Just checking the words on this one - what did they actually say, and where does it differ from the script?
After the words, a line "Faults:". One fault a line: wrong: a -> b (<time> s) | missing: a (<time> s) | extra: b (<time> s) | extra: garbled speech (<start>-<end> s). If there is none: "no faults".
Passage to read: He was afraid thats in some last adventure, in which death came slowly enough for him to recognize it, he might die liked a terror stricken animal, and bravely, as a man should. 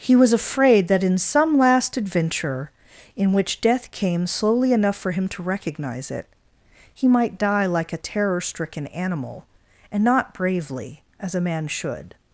He was afraid that in some last adventure, in which death came slowly enough for him to recognize it, he might die like a terror stricken animal, and not bravely, as a man should.
Faults:
wrong: thats -> that (0.9 s)
wrong: liked -> like (7.7 s)
extra: not (10.0 s)